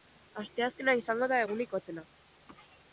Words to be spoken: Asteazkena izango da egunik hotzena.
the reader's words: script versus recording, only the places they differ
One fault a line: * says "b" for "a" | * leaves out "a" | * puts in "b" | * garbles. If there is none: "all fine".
all fine